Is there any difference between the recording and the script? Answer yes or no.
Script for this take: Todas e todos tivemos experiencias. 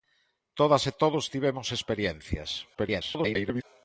yes